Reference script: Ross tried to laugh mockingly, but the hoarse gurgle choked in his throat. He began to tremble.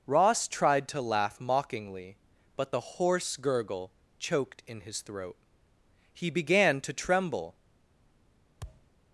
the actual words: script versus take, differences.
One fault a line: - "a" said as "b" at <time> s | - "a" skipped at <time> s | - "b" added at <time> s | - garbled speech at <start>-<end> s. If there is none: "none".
none